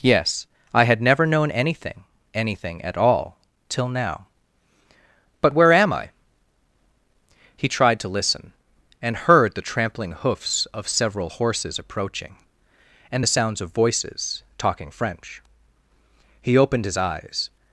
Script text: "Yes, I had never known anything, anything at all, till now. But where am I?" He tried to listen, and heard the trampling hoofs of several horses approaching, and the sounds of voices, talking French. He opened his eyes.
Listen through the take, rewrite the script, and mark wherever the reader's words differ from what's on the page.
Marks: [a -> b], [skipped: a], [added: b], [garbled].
"Yes, I had never known anything, anything at all, till now. But where am I?" He tried to listen, and heard the trampling hoofs of several horses approaching, and the sounds of voices, talking French. He opened his eyes.